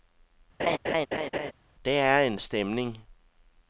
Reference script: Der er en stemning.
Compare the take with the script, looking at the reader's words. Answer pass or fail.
pass